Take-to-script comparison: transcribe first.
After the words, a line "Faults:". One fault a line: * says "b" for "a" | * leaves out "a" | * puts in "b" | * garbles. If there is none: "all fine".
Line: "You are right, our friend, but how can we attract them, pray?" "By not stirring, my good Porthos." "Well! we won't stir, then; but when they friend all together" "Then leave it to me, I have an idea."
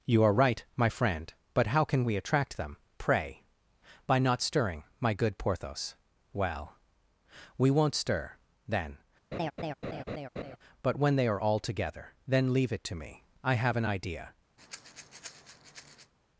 "You are right, my friend, but how can we attract them, pray?" "By not stirring, my good Porthos." "Well! we won't stir, then; but when they are all together" "Then leave it to me, I have an idea."
Faults:
* says "my" for "our"
* says "are" for "friend"